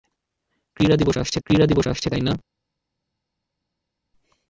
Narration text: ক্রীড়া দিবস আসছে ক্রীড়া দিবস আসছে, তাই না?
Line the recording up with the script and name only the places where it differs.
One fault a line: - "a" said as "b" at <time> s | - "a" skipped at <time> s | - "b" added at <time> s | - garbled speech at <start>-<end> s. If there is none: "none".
none